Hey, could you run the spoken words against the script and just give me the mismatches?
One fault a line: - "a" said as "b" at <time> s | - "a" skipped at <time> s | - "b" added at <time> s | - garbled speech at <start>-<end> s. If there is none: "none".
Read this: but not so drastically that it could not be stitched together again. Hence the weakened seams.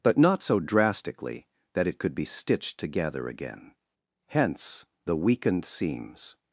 - "not" skipped at 2.1 s